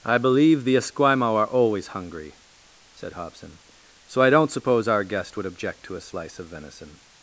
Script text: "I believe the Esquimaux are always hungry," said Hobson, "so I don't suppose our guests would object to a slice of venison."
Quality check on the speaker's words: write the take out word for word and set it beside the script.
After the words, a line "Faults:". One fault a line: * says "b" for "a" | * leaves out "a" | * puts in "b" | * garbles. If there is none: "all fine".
"I believe the Esquimaux are always hungry," said Hobson, "so I don't suppose our guest would object to a slice of venison."
Faults:
* says "guest" for "guests"